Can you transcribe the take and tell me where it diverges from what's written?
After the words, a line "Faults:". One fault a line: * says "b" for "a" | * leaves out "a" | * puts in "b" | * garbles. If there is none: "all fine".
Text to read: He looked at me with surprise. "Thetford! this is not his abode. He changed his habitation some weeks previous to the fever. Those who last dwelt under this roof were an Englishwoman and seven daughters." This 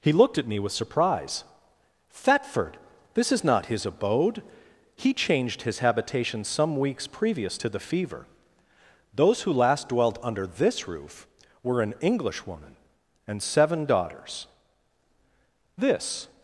He looked at me with surprise. "Thetford! this is not his abode. He changed his habitation some weeks previous to the fever. Those who last dwelt under this roof were an Englishwoman and seven daughters." This
Faults:
all fine